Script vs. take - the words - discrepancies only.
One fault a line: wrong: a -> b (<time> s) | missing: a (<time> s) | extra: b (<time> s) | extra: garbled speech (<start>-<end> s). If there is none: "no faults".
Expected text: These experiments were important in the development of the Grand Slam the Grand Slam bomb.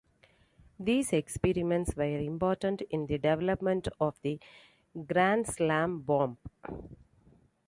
missing: the Grand Slam (6.0 s)